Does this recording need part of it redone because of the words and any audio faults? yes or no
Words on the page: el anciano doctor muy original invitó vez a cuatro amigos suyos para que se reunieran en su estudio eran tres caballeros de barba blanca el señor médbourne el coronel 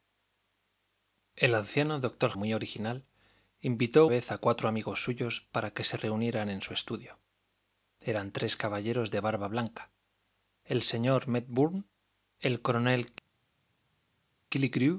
no